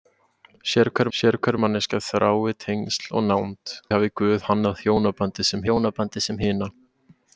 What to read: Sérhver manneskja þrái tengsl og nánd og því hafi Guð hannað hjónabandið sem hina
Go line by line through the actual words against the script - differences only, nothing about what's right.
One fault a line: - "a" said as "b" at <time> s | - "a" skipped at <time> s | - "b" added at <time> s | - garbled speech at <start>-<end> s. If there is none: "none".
- "sérhver" added at 1.2 s
- "og því" skipped at 3.8 s
- "hjónabandið sem" added at 5.7 s